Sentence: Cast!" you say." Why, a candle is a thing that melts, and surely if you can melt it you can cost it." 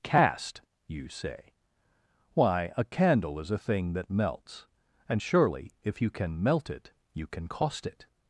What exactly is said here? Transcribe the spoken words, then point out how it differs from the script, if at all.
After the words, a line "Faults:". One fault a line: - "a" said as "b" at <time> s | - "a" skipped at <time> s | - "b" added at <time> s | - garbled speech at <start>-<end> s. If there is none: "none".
Cast!" you say." Why, a candle is a thing that melts, and surely if you can melt it you can cost it."
Faults:
none